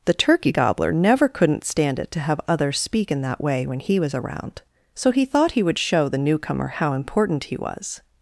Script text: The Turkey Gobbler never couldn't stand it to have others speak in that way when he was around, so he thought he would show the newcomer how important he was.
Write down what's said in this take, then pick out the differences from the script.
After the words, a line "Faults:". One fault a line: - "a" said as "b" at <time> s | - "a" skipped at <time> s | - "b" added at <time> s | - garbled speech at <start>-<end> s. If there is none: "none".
The Turkey Gobbler never couldn't stand it to have others speak in that way when he was around, so he thought he would show the newcomer how important he was.
Faults:
none